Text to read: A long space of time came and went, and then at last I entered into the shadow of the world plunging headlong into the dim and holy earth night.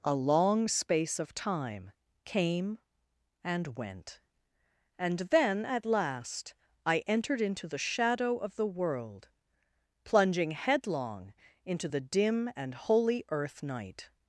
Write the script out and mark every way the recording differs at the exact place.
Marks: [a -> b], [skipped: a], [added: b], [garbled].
A long space of time came and went, and then at last I entered into the shadow of the world plunging headlong into the dim and holy earth night.